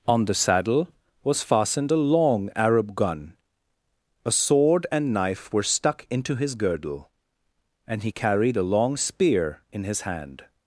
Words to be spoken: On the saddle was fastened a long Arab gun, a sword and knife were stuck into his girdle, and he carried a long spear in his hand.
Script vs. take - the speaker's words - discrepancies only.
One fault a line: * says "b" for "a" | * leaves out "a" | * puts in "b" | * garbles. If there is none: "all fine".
all fine